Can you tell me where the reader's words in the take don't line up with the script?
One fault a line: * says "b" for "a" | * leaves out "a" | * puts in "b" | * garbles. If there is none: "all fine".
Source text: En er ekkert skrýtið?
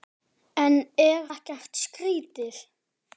all fine